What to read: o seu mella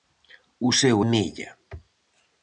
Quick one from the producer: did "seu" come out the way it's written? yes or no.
yes